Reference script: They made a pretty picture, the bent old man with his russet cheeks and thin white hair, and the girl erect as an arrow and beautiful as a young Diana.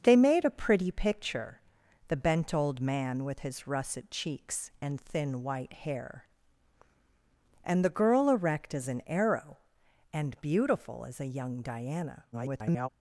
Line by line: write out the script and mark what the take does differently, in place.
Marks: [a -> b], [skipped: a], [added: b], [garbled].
They made a pretty picture, the bent old man with his russet cheeks and thin white hair, and the girl erect as an arrow and beautiful as a young Diana. [garbled]